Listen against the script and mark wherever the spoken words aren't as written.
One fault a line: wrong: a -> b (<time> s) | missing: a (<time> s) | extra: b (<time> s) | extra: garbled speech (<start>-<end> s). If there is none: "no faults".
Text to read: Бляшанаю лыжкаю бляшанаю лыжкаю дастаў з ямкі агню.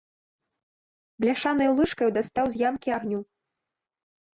missing: бляшанаю лыжкаю (2.1 s)